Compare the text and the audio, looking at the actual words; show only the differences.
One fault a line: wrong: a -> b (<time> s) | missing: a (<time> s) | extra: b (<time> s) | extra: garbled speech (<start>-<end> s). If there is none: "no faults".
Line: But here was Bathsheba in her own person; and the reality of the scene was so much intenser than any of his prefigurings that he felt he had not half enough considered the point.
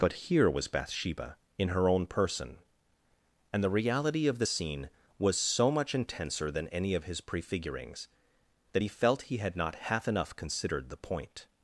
no faults